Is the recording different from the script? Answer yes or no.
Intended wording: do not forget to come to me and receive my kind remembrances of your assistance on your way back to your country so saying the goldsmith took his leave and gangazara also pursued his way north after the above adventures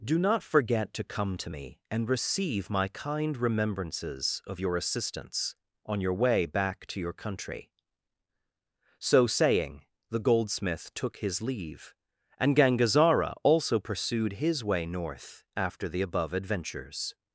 no